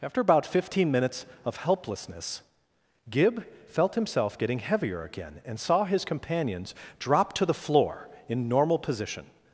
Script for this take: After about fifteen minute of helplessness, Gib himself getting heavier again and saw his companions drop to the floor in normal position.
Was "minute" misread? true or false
true